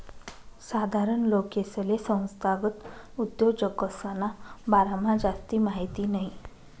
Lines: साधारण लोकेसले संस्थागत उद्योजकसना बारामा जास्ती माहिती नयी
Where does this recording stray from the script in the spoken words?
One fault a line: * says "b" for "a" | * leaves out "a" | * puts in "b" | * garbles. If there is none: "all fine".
all fine